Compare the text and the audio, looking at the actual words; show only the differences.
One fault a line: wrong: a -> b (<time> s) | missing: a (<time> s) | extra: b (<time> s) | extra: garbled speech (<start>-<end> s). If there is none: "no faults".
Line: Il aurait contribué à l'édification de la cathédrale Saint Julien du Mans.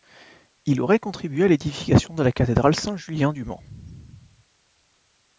no faults